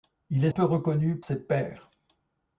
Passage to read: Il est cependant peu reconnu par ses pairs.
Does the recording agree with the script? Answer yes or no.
no